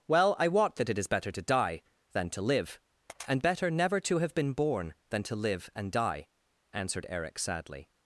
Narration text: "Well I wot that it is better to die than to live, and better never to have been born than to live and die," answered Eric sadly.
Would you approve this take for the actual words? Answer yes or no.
yes